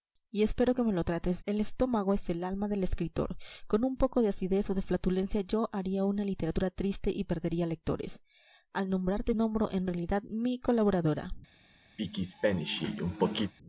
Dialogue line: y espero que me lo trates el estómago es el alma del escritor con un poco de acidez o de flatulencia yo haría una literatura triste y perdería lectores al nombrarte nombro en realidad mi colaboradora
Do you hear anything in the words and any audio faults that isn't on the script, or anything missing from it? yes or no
yes